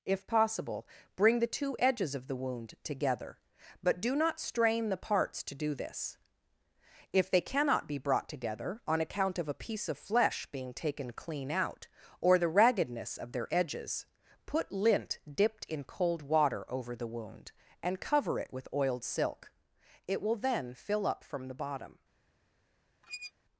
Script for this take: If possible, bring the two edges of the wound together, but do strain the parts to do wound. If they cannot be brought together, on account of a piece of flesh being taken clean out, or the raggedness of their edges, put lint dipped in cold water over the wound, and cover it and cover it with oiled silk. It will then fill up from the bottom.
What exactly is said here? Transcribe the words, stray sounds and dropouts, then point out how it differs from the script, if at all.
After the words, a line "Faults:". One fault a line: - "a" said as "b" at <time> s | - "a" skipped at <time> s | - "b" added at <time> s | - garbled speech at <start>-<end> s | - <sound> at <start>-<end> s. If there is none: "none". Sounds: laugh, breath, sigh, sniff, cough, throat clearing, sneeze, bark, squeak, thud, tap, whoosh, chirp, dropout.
If possible, bring the two edges of the wound together, but do not strain the parts to do this. If they cannot be brought together, on account of a piece of flesh being taken clean out, or the raggedness of their edges, put lint dipped in cold water over the wound, and cover it with oiled silk. It will then fill up from the bottom.
Faults:
- "not" added at 4.2 s
- "wound" said as "this" at 5.8 s
- "and cover it" skipped at 18.5 s
- squeak at 23.0-23.3 s